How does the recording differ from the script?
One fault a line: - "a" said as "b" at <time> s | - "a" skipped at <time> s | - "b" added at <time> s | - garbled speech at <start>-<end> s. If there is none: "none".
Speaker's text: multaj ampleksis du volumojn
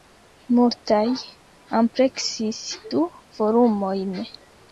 none